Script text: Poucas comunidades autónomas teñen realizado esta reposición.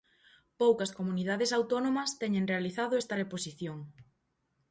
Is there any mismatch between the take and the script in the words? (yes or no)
no